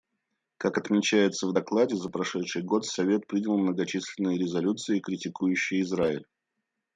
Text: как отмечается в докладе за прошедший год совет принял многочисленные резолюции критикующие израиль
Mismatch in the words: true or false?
false